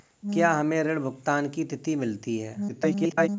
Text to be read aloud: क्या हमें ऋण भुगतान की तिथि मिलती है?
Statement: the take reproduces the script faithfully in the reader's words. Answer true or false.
false